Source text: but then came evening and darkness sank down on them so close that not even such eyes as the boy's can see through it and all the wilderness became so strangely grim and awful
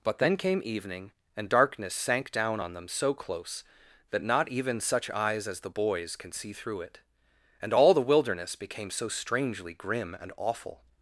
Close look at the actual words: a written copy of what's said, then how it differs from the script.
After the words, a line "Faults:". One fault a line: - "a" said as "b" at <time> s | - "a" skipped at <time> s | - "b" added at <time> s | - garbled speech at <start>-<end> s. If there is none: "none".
but then came evening and darkness sank down on them so close that not even such eyes as the boy's can see through it and all the wilderness became so strangely grim and awful
Faults:
none